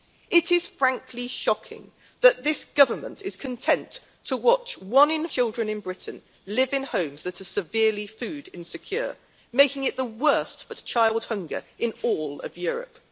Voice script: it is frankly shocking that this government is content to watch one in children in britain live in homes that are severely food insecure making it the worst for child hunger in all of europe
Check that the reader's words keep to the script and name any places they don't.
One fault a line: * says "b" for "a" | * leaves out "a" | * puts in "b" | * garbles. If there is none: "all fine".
all fine